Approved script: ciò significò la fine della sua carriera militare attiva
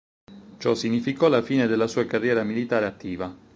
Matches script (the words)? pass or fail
pass